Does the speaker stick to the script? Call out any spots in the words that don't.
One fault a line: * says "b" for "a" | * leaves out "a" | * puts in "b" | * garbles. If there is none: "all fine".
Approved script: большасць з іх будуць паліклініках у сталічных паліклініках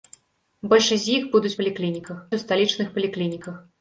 all fine